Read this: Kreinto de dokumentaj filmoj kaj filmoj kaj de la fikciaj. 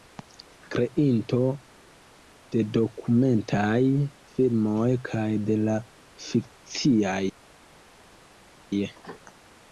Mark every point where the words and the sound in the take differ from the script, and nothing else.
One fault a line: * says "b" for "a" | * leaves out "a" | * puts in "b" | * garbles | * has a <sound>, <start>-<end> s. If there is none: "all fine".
* leaves out "filmoj kaj"